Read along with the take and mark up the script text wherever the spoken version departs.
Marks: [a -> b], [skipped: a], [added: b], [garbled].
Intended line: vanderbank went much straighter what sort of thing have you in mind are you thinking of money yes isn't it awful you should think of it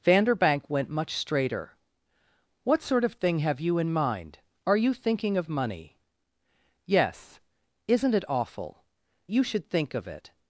vanderbank went much straighter what sort of thing have you in mind are you thinking of money yes isn't it awful you should think of it